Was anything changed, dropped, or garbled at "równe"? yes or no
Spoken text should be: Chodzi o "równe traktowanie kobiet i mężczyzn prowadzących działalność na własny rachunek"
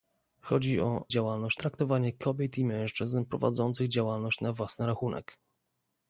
yes